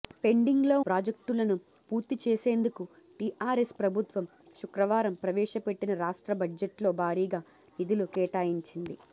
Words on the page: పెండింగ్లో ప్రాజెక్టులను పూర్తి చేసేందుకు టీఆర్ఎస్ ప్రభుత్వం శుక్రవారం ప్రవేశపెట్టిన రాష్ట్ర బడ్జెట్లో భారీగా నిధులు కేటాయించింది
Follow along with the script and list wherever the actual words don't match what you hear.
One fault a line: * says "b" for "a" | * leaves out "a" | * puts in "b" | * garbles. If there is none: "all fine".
all fine